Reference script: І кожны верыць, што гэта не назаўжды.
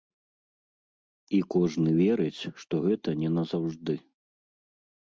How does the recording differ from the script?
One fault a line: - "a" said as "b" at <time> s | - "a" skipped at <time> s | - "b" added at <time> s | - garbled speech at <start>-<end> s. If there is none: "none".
none